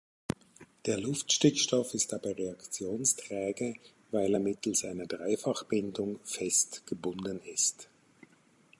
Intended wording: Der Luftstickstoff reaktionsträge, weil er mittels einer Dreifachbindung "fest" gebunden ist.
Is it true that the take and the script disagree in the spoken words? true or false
true